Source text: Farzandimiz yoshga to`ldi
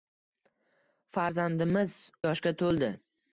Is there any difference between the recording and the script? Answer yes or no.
no